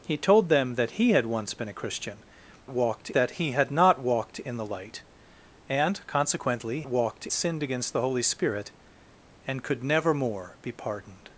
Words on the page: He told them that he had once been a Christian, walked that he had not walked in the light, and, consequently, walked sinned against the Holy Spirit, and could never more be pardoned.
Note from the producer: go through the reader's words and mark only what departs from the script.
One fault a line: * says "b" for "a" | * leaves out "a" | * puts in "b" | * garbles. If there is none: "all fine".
all fine